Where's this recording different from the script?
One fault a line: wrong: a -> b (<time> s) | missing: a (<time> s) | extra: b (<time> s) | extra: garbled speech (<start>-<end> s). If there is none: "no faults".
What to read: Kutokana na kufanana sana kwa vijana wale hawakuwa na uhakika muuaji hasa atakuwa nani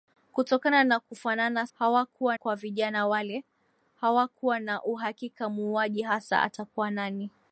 wrong: sana -> hawakuwa (1.7 s)